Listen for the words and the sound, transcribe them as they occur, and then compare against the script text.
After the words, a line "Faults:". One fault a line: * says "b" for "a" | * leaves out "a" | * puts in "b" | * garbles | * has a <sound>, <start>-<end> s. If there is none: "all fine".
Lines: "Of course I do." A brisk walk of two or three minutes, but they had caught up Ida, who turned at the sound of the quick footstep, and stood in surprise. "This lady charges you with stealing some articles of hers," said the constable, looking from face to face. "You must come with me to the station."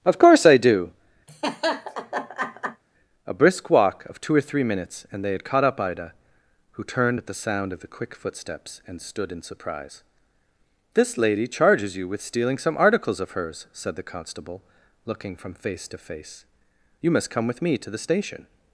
"Of course I do." A brisk walk of two or three minutes, and they had caught up Ida, who turned at the sound of the quick footsteps, and stood in surprise. "This lady charges you with stealing some articles of hers," said the constable, looking from face to face. "You must come with me to the station."
Faults:
* has a laugh, 1.3-2.8 s
* says "and" for "but"
* says "footsteps" for "footstep"